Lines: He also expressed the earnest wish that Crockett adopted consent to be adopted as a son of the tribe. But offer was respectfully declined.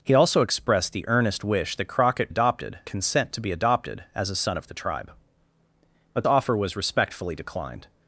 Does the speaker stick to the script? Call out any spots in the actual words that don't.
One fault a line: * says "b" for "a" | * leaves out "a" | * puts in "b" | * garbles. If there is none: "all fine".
all fine